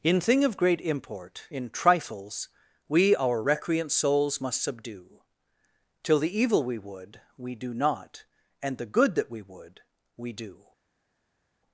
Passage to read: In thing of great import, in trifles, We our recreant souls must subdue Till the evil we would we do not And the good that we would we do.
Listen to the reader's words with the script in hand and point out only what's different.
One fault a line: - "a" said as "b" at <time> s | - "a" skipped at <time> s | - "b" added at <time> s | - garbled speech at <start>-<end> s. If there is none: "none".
none